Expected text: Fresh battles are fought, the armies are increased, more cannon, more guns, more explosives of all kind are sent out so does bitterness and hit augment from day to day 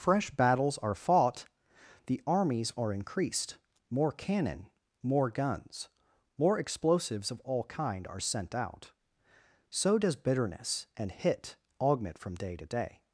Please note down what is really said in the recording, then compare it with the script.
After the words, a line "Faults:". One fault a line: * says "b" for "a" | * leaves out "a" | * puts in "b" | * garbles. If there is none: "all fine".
Fresh battles are fought, the armies are increased, more cannon, more guns, more explosives of all kind are sent out so does bitterness and hit augment from day to day
Faults:
all fine